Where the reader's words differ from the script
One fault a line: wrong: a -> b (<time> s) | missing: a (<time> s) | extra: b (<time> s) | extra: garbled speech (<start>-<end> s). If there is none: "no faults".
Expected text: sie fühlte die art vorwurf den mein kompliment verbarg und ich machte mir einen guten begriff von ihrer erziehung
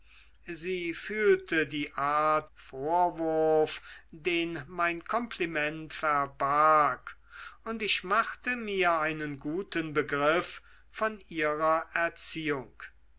no faults